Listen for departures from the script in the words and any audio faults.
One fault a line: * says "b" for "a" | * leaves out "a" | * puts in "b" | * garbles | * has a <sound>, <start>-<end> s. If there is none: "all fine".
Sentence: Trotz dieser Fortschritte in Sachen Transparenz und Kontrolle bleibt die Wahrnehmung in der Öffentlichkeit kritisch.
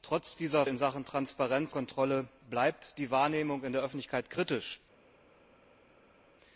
* leaves out "Fortschritte"
* leaves out "und"